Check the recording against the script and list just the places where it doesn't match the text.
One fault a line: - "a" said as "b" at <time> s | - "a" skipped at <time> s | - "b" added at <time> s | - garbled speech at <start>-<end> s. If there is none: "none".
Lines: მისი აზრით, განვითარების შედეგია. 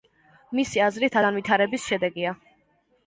none